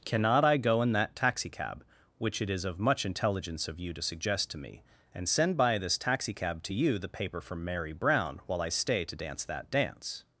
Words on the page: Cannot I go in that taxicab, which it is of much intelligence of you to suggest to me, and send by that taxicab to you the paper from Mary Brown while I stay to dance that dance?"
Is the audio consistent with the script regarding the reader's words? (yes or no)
no